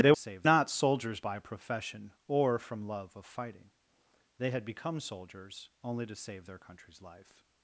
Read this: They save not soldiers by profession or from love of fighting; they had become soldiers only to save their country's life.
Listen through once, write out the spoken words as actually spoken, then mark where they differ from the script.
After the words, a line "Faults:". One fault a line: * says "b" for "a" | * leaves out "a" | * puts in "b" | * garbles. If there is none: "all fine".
They save not soldiers by profession or from love of fighting; they had become soldiers only to save their country's life.
Faults:
all fine